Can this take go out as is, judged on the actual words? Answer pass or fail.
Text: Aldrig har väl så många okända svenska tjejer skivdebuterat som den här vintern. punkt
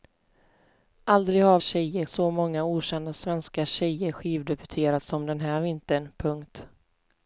fail